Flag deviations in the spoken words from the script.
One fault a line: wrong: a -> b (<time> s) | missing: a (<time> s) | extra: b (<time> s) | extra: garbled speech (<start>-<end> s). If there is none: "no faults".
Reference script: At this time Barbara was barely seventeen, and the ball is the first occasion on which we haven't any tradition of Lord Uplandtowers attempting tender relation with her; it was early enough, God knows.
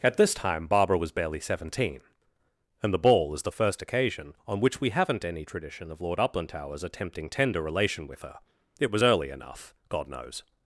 no faults